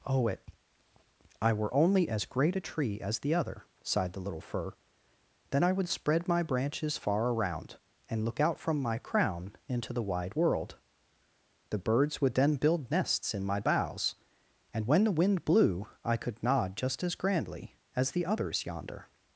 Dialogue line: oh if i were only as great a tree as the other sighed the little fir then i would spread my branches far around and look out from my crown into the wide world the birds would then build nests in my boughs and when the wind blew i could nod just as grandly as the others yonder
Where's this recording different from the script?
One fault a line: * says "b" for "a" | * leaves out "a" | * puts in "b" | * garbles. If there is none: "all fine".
* says "it" for "if"